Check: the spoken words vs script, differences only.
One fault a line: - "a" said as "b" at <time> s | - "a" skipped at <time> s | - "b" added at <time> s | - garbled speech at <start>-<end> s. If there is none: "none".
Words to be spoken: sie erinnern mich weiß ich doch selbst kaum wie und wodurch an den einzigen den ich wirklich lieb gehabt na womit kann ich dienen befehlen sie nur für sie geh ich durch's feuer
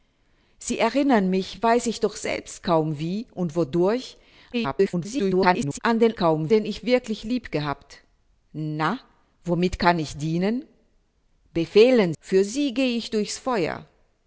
- garbled speech at 4.5-5.8 s
- "einzigen" said as "kaum" at 6.2 s
- "sie nur" skipped at 12.1 s